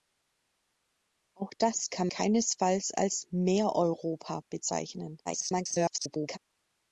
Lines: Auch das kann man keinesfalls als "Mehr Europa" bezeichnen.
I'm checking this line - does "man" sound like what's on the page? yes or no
no